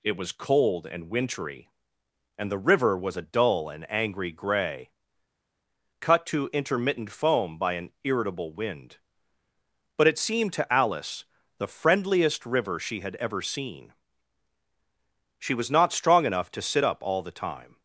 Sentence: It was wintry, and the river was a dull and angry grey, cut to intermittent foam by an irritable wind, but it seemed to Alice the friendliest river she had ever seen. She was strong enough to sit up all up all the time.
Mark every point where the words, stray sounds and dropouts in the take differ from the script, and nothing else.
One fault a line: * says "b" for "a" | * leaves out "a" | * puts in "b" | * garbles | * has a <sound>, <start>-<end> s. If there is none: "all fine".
* puts in "cold and"
* puts in "not"
* leaves out "up all"